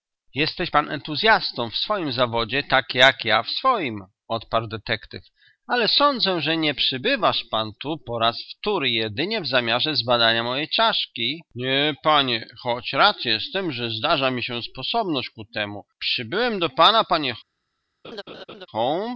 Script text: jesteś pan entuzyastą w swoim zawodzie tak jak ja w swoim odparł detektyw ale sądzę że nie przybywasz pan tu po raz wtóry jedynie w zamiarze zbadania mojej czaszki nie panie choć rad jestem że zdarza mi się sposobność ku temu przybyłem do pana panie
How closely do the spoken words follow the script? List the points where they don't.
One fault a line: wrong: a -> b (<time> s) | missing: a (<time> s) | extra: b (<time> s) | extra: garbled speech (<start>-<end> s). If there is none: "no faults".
no faults